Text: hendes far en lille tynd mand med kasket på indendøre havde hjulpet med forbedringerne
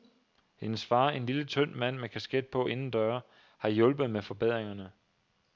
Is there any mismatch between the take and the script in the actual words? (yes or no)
yes